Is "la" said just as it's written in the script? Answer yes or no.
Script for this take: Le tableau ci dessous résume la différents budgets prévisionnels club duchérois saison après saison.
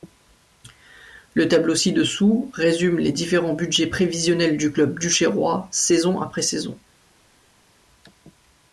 no